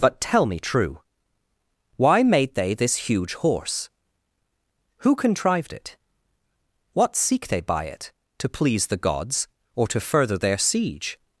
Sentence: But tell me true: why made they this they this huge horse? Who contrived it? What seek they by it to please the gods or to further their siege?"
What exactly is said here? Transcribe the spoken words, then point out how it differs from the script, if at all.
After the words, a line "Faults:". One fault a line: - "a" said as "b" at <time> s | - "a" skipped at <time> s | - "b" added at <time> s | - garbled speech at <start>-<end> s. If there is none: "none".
But tell me true: why made they this huge horse? Who contrived it? What seek they by it to please the gods or to further their siege?"
Faults:
- "they this" skipped at 3.1 s